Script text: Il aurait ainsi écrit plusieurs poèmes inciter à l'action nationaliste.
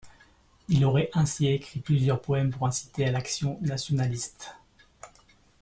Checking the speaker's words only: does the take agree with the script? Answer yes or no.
no